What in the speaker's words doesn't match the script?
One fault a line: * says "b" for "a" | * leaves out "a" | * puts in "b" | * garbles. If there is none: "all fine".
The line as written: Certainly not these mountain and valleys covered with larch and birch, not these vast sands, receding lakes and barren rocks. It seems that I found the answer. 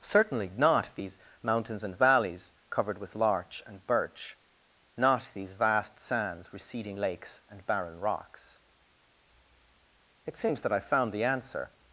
* says "mountains" for "mountain"